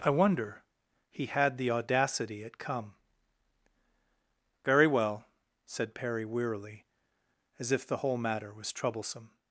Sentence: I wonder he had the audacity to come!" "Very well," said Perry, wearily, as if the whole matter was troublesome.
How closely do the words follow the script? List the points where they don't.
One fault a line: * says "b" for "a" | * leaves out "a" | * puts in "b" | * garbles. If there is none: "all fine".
* says "at" for "to"